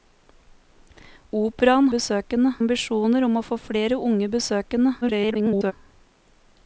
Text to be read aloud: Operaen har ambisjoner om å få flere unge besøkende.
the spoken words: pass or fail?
fail